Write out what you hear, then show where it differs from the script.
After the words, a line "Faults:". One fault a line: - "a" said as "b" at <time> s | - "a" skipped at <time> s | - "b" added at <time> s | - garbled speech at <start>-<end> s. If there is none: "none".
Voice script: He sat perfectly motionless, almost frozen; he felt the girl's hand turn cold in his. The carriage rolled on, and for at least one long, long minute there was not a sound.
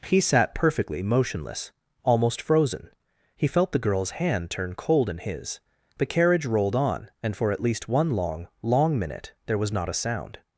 He sat perfectly motionless, almost frozen; he felt the girl's hand turn cold in his. The carriage rolled on, and for at least one long, long minute there was not a sound.
Faults:
none